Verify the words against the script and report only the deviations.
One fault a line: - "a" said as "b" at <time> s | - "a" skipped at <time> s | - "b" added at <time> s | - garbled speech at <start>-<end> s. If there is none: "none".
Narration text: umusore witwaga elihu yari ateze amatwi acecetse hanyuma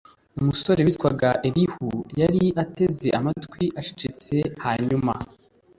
none